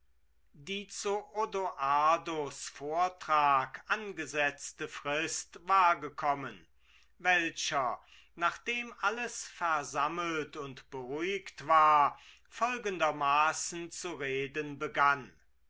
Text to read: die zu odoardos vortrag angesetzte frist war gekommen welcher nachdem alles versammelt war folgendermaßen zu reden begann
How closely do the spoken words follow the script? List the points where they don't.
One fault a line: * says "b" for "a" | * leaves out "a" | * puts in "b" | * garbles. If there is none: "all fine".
* puts in "und beruhigt"